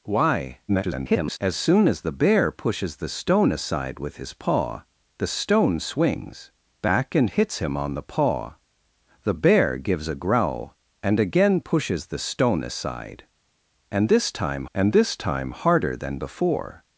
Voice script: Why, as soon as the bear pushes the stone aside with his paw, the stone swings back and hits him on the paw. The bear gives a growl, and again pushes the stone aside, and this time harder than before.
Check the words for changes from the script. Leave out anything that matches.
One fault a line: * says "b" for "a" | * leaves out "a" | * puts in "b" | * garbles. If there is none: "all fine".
* garbles
* puts in "and this time"